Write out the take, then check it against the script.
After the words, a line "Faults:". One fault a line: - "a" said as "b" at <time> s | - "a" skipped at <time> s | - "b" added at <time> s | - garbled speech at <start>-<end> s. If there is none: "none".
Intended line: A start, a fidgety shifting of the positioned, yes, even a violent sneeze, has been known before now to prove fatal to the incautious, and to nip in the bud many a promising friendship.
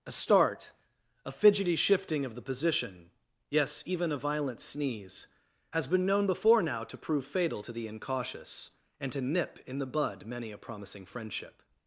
A start, a fidgety shifting of the position, yes, even a violent sneeze, has been known before now to prove fatal to the incautious, and to nip in the bud many a promising friendship.
Faults:
- "positioned" said as "position" at 2.4 s